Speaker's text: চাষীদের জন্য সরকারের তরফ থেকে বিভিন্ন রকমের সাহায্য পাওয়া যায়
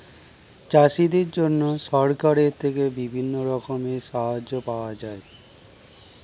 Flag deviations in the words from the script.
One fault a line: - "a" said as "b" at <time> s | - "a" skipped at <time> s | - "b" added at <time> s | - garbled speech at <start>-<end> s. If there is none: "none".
- "তরফ" skipped at 2.5 s